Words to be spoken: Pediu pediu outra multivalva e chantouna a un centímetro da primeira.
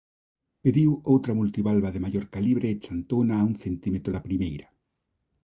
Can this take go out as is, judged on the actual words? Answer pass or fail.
fail